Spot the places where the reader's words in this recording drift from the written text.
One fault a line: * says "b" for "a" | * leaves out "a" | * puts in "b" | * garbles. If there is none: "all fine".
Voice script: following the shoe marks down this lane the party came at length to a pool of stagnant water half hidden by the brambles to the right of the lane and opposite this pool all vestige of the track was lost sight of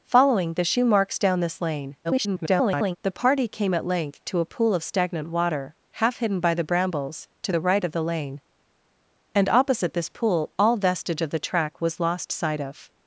* garbles